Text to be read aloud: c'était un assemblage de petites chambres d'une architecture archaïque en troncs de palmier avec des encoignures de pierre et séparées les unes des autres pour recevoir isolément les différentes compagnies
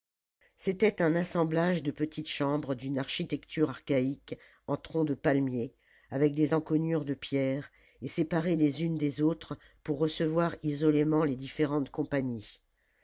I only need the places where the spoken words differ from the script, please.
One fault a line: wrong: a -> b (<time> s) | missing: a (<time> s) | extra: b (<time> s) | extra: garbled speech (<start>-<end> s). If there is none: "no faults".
no faults